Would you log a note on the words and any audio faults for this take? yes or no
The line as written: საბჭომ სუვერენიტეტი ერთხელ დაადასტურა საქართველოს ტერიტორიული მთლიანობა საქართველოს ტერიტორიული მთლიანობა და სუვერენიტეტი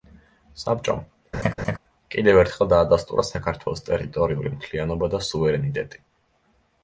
yes